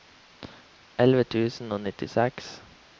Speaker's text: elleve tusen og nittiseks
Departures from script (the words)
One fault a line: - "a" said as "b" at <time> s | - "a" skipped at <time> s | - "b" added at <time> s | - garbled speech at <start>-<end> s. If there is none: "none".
none